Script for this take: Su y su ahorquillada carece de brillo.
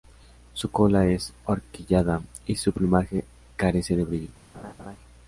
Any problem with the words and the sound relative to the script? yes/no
yes